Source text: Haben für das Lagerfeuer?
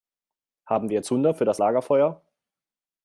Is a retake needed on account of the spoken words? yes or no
yes